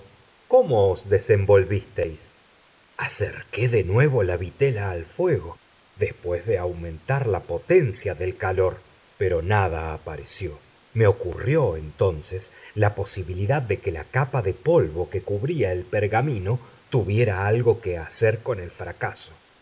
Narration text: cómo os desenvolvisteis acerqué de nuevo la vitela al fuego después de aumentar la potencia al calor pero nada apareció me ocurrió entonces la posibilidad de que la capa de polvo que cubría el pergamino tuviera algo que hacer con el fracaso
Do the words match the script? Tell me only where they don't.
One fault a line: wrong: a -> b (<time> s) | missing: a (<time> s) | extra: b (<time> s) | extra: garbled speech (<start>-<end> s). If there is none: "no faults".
wrong: al -> del (8.2 s)